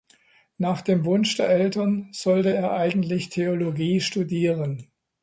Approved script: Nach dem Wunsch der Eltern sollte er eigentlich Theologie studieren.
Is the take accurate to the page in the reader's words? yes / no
yes